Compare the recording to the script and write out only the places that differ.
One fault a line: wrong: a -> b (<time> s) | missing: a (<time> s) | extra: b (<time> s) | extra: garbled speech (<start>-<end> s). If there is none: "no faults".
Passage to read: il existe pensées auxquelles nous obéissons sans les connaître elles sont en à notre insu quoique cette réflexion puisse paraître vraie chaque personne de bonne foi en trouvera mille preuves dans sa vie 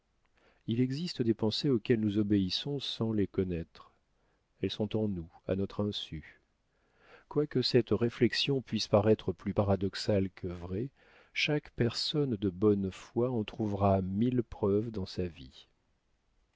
extra: des (1.2 s)
extra: nous (5.1 s)
extra: plus paradoxale que (9.3 s)